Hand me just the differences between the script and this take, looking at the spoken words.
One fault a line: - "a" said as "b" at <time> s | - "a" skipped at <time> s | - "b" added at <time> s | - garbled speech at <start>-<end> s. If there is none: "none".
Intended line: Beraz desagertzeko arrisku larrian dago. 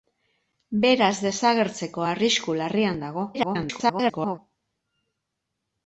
- garbled speech at 3.3-4.4 s